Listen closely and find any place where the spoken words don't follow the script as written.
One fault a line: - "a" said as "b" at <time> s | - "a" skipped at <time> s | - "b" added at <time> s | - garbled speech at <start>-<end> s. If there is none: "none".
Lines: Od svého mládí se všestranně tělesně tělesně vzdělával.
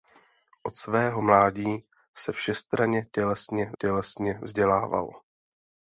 none